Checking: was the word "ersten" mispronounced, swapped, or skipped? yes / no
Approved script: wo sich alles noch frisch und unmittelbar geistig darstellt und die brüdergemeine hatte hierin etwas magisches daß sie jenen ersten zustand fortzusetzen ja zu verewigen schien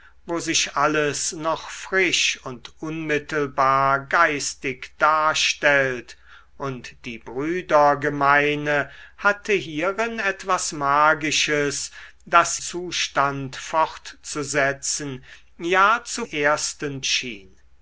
yes